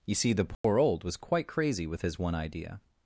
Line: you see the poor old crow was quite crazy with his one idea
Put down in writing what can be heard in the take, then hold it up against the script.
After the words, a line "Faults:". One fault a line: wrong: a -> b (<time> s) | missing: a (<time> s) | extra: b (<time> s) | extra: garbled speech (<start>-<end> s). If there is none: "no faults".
you see the poor old was quite crazy with his one idea
Faults:
missing: crow (1.0 s)